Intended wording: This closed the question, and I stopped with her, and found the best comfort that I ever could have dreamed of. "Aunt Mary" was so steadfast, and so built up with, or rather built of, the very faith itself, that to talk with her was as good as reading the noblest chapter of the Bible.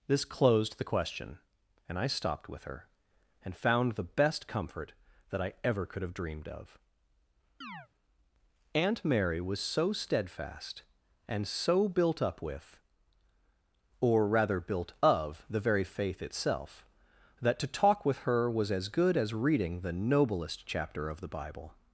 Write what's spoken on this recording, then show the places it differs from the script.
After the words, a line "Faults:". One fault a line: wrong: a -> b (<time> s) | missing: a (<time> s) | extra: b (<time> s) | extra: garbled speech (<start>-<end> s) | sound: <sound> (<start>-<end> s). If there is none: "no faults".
This closed the question, and I stopped with her, and found the best comfort that I ever could have dreamed of. "Aunt Mary" was so steadfast, and so built up with, or rather built of, the very faith itself, that to talk with her was as good as reading the noblest chapter of the Bible.
Faults:
sound: chirp (7.6-7.9 s)